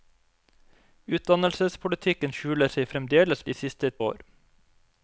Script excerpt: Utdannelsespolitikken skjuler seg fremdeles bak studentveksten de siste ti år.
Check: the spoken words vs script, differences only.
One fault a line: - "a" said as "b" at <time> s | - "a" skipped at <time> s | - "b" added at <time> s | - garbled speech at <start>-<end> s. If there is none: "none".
- "bak studentveksten" skipped at 3.5 s
- "ti" skipped at 3.9 s